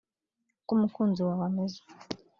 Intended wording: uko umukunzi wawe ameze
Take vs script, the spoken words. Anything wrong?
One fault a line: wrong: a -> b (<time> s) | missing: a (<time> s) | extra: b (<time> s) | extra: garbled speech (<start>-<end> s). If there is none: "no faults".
no faults